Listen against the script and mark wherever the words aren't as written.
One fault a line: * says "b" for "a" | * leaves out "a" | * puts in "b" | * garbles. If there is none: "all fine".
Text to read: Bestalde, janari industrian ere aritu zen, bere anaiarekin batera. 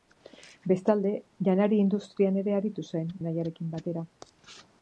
* leaves out "bere"